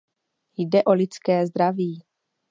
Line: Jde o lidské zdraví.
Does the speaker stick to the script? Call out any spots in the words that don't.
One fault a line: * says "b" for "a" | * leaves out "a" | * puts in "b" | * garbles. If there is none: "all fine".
all fine